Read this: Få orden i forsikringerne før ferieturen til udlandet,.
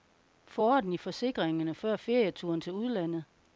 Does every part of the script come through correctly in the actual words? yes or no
yes